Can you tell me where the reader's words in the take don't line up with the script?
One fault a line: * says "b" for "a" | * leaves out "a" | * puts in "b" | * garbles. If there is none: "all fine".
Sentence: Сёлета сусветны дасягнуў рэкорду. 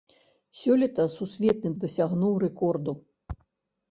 all fine